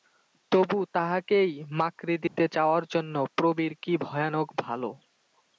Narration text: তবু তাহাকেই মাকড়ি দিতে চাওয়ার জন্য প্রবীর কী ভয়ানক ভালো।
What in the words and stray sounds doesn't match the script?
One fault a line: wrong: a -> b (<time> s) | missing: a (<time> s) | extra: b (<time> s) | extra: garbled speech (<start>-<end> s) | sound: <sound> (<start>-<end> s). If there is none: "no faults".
sound: dropout (2.3-2.4 s)